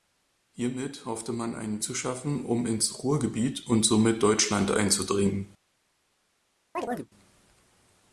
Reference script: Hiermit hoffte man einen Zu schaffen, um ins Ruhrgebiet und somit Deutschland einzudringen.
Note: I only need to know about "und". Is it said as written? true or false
true